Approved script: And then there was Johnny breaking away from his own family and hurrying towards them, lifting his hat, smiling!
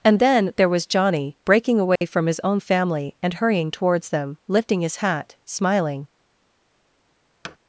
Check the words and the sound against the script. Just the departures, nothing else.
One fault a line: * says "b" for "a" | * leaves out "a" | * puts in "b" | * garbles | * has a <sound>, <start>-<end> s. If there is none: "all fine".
* has a dropout, 2.0-2.0 s
* has a thud, 7.4-7.6 s